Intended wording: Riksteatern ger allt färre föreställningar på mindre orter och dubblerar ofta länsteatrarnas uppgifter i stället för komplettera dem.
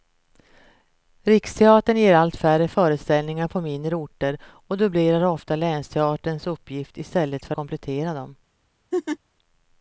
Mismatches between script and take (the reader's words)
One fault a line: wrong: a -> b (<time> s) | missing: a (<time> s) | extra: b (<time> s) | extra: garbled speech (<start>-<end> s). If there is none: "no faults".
no faults